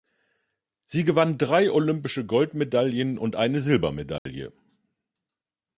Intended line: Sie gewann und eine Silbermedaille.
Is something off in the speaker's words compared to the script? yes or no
yes